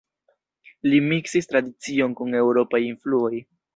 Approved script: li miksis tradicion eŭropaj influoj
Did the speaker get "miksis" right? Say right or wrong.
right